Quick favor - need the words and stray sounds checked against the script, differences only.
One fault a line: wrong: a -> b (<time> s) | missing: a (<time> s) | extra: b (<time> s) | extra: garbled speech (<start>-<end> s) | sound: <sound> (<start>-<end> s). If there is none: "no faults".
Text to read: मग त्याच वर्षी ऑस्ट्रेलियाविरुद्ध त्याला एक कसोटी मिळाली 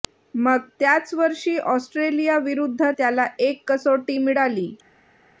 no faults